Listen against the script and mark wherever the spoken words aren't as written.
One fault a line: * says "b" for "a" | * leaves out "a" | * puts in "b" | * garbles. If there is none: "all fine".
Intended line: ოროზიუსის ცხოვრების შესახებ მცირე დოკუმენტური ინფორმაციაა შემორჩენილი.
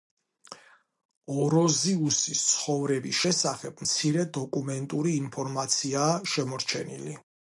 all fine